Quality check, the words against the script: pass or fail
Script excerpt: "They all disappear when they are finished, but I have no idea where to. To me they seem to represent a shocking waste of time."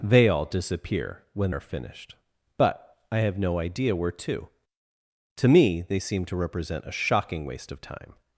fail